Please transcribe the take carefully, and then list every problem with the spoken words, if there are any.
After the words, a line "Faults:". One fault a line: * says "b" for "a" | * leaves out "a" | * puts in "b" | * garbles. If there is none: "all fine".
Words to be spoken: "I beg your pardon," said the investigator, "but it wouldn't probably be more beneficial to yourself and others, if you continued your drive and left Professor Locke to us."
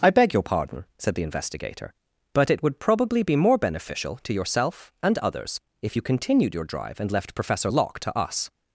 "I beg your pardon," said the investigator, "but it would probably be more beneficial to yourself and others, if you continued your drive and left Professor Locke to us."
Faults:
* says "would" for "wouldn't"